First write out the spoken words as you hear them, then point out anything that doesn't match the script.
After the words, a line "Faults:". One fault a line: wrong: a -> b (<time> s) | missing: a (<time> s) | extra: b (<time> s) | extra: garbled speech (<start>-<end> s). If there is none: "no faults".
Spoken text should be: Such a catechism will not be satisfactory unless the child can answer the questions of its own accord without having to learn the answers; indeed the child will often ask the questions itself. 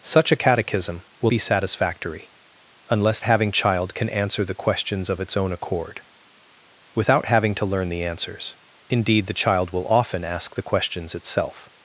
Such a catechism will be satisfactory unless having child can answer the questions of its own accord without having to learn the answers; indeed the child will often ask the questions itself.
Faults:
missing: not (1.3 s)
wrong: the -> having (3.2 s)